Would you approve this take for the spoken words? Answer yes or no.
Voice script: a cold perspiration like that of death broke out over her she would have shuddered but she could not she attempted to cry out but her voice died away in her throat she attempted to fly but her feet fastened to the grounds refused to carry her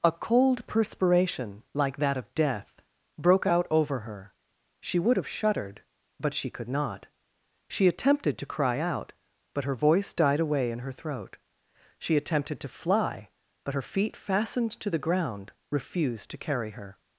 no